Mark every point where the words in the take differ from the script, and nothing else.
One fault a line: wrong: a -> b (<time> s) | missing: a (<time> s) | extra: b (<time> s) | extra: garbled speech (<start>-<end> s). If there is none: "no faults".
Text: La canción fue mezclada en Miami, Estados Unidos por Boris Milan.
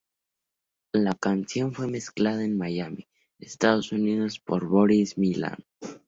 no faults